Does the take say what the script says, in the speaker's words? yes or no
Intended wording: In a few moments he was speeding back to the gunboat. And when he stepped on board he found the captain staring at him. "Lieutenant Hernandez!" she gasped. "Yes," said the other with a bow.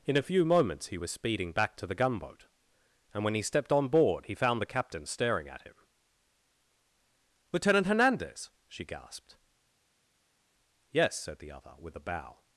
yes